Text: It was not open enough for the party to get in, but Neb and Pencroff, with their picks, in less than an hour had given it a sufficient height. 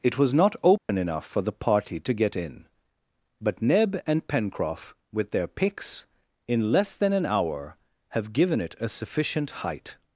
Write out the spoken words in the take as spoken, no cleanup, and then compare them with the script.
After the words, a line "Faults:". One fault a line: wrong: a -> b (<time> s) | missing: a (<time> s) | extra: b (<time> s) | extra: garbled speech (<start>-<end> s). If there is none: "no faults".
It was not open enough for the party to get in, but Neb and Pencroff, with their picks, in less than an hour have given it a sufficient height.
Faults:
wrong: had -> have (8.1 s)